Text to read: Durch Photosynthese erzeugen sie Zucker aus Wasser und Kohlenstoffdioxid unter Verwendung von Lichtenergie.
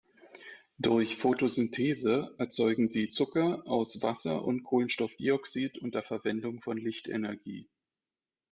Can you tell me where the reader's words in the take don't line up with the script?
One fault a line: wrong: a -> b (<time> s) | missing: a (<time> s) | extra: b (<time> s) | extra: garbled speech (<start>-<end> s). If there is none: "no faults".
no faults